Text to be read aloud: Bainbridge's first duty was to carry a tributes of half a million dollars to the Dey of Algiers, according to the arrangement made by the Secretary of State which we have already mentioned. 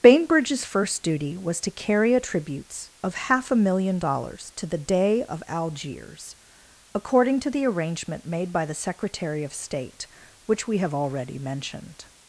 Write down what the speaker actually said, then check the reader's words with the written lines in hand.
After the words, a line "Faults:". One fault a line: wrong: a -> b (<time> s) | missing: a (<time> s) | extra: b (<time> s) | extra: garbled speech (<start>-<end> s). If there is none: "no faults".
Bainbridge's first duty was to carry a tributes of half a million dollars to the Dey of Algiers, according to the arrangement made by the Secretary of State which we have already mentioned.
Faults:
no faults